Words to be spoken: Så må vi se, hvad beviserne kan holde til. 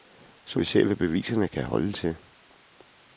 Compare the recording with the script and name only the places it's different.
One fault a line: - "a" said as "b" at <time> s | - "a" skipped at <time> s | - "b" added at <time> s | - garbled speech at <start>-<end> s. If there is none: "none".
- "må" skipped at 0.6 s